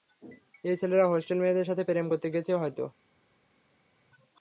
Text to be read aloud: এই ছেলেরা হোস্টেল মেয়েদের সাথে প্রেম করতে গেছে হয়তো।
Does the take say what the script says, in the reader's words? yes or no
yes